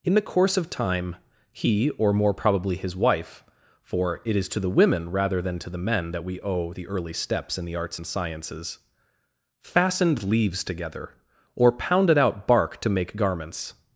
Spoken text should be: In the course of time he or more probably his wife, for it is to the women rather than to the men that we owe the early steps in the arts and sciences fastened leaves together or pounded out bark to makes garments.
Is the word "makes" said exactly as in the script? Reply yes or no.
no